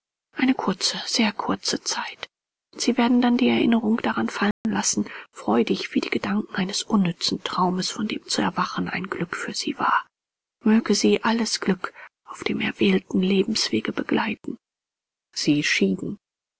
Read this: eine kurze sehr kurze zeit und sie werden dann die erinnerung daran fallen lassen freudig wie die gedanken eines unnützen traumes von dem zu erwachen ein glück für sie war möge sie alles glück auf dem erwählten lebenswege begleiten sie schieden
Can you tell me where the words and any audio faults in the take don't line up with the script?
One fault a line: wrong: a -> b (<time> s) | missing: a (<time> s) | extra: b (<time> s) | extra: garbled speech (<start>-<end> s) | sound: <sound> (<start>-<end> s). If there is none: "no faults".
sound: dropout (4.5-4.7 s)